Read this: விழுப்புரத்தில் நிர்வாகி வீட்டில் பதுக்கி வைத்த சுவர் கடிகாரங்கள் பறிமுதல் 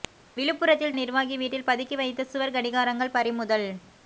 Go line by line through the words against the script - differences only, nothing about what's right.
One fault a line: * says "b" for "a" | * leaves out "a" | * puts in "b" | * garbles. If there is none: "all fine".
all fine